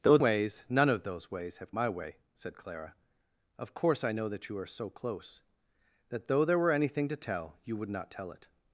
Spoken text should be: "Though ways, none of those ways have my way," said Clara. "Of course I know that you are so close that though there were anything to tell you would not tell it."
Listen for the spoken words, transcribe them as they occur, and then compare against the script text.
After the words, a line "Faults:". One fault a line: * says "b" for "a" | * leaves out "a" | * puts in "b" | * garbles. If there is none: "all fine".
"Though ways, none of those ways have my way," said Clara. "Of course I know that you are so close that though there were anything to tell you would not tell it."
Faults:
all fine